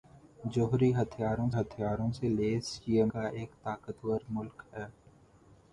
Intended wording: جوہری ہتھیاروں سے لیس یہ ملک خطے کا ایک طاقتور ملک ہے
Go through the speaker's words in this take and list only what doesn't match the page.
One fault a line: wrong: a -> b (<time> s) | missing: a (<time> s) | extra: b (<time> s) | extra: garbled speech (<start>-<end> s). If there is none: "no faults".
extra: ہتھیاروں (1.5 s)
missing: ملک خطے (3.0 s)